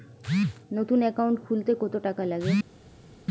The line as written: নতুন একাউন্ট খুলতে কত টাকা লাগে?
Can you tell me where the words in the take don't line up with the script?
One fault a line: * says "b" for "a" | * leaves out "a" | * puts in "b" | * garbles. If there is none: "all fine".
all fine